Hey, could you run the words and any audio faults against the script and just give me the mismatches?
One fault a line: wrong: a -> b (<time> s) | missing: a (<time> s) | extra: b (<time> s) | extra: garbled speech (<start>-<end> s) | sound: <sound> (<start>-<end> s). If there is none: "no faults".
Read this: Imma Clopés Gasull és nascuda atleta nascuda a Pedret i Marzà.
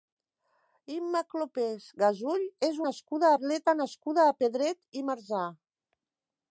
no faults